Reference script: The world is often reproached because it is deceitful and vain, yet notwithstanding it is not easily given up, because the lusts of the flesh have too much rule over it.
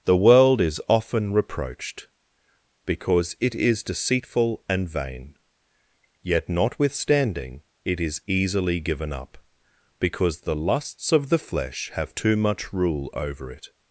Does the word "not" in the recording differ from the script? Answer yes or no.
yes